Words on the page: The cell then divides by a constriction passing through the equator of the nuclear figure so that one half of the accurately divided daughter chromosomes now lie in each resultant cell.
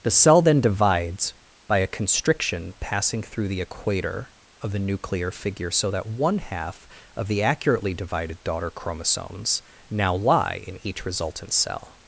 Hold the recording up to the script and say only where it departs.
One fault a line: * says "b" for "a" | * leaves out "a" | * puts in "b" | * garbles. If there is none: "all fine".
all fine